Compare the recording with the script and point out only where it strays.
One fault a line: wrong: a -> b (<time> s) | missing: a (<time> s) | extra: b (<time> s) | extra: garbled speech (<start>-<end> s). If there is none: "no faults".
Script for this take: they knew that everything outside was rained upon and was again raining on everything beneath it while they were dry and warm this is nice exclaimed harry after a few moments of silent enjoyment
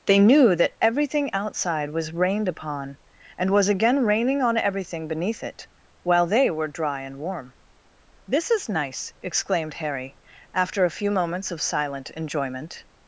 no faults